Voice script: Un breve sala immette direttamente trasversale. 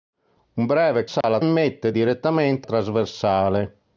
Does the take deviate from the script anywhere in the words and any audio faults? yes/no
yes